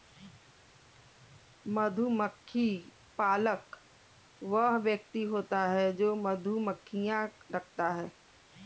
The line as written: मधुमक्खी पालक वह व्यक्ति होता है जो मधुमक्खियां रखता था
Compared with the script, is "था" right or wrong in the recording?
wrong